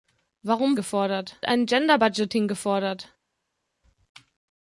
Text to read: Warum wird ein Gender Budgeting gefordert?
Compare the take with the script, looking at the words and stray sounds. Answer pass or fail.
fail